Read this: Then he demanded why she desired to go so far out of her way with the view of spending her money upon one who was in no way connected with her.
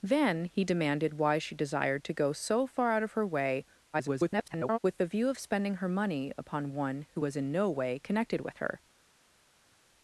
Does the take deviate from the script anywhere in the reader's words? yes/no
yes